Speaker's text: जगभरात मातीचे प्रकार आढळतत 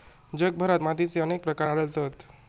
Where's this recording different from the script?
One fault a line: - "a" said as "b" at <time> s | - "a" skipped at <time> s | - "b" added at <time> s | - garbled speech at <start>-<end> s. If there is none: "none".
- "अनेक" added at 1.2 s